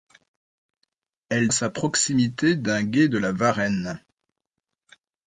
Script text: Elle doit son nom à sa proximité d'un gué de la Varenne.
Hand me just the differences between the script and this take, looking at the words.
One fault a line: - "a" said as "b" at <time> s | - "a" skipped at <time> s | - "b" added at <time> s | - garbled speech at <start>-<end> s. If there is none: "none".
- "doit son nom" skipped at 1.5 s